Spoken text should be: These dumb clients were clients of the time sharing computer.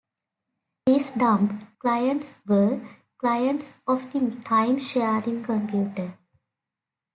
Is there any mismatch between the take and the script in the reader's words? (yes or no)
no